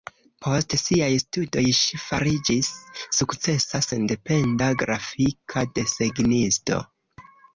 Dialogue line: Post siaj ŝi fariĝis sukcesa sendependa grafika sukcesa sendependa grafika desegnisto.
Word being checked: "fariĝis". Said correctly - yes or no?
yes